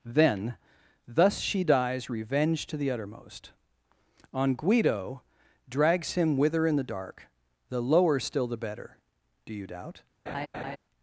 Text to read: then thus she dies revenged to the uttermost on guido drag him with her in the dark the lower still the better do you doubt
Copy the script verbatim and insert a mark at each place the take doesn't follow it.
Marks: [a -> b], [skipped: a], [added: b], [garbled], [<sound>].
then thus she dies revenged to the uttermost on guido [drag -> drags] him with her in the dark the lower still the better do you doubt [laugh]